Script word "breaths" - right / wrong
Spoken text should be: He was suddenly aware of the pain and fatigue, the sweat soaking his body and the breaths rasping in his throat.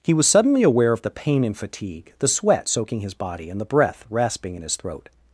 wrong